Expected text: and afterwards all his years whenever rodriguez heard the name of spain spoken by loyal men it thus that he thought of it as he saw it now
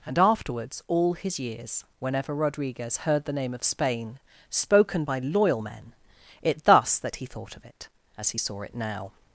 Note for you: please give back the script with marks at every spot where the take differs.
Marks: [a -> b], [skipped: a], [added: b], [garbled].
and afterwards all his years whenever rodriguez heard the name of spain spoken by loyal men it thus that he thought of it as he saw it now